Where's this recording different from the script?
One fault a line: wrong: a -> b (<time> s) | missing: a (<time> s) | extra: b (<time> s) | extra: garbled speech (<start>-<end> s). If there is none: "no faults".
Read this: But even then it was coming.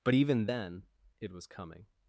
no faults